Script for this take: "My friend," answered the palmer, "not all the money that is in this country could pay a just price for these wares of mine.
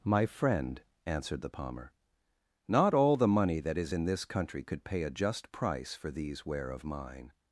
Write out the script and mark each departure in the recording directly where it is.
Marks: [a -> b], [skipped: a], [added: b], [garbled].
"My friend," answered the palmer, "not all the money that is in this country could pay a just price for these [wares -> ware] of mine.